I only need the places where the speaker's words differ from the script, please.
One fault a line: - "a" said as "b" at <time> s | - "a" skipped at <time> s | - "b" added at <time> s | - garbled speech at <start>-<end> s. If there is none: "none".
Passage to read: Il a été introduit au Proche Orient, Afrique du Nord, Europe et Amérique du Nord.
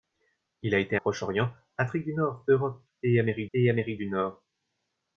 - "introduit au" skipped at 1.0 s
- "et Amérique" added at 3.5 s